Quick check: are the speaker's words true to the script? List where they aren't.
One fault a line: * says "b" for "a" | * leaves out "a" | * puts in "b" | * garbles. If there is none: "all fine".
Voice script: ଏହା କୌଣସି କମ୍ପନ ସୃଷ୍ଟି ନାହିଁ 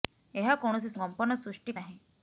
all fine